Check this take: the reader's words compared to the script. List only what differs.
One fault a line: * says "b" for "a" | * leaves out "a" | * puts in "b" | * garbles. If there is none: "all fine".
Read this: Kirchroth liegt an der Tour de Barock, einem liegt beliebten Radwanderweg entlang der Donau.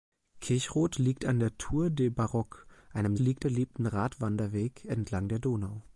all fine